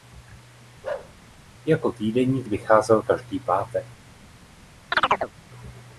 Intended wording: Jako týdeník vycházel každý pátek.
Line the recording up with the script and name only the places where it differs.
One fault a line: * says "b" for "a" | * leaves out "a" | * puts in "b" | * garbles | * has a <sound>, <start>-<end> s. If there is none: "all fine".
* has a bark, 0.8-1.1 s
* has a chirp, 4.9-5.3 s